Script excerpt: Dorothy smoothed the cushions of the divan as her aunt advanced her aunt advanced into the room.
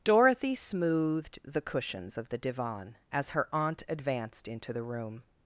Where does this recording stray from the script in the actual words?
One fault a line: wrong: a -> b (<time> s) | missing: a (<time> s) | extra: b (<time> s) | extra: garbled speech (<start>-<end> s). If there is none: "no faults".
missing: her aunt advanced (4.5 s)